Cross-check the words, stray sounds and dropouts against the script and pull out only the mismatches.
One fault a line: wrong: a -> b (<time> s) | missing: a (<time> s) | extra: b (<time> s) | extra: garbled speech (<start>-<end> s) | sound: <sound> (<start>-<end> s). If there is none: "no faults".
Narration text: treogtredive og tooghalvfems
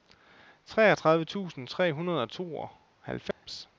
extra: tusind tre hundrede (1.2 s)
sound: dropout (3.3-3.5 s)